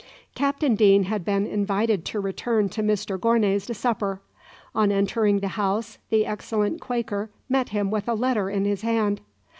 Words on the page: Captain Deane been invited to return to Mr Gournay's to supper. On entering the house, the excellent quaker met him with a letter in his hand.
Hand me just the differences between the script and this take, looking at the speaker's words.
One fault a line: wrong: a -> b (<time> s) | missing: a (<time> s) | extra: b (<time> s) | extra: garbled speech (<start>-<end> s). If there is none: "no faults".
extra: had (1.0 s)